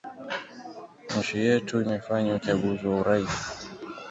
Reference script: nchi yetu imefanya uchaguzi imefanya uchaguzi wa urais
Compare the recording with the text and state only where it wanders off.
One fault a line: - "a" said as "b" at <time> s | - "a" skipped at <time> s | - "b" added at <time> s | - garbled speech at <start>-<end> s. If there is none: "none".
- "imefanya uchaguzi" skipped at 2.9 s